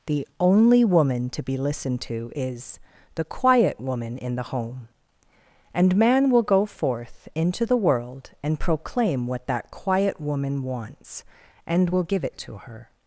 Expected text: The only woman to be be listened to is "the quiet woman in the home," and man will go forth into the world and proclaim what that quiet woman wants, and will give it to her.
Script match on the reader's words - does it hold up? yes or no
no